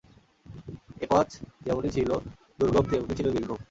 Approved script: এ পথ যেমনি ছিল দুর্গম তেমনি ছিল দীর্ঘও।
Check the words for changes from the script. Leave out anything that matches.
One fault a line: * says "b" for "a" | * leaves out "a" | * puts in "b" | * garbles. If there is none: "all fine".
all fine